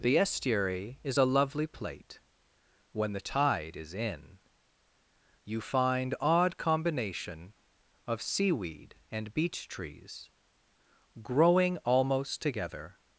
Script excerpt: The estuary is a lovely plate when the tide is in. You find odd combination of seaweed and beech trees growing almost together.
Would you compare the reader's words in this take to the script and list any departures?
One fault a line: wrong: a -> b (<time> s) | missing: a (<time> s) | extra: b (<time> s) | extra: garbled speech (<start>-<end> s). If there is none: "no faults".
no faults